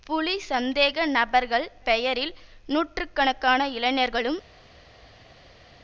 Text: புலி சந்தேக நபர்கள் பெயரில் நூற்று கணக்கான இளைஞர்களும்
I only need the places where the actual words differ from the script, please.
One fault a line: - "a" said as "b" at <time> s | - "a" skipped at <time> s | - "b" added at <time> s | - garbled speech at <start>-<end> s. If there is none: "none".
none